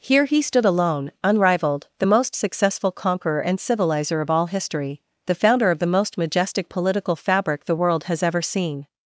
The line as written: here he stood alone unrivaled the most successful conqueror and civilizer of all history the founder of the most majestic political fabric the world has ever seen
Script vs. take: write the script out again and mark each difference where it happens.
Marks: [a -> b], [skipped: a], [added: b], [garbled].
here he stood alone unrivaled the most successful conqueror and civilizer of all history the founder of the most majestic political fabric the world has ever seen